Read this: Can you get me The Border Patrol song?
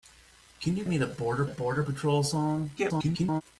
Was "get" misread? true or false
true